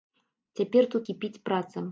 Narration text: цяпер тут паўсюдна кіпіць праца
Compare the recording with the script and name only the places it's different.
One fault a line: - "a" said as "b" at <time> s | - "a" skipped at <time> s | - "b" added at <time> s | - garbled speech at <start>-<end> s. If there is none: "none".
- "паўсюдна" skipped at 1.0 s